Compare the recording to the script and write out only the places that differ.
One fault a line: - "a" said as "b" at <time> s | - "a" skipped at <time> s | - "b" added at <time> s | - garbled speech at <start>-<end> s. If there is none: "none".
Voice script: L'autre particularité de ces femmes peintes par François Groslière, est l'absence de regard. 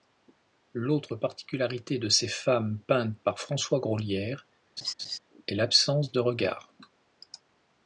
none